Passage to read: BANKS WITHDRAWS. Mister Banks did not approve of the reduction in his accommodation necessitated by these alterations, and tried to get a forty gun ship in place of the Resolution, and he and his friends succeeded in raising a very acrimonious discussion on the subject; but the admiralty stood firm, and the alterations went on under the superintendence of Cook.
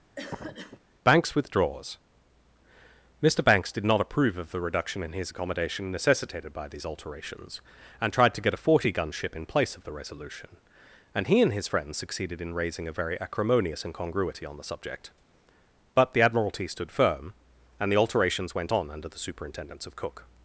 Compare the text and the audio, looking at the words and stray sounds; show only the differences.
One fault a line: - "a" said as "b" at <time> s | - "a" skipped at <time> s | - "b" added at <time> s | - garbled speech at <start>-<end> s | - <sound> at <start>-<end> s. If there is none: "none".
- cough at 0.2-0.8 s
- "discussion" said as "incongruity" at 13.9 s